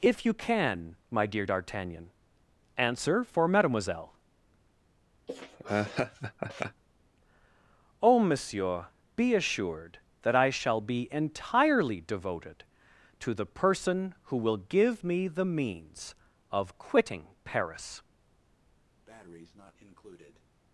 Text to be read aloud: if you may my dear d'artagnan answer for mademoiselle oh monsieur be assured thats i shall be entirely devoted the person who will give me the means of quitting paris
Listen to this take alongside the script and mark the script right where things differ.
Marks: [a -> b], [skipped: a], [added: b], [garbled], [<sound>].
if you [may -> can] my dear d'artagnan answer for mademoiselle [laugh] oh monsieur be assured [thats -> that] i shall be entirely devoted [added: to] the person who will give me the means of quitting paris [breath]